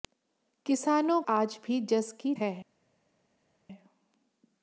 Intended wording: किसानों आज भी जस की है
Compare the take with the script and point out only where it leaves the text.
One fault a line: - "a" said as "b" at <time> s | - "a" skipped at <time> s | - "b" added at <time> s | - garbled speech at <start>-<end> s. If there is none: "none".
none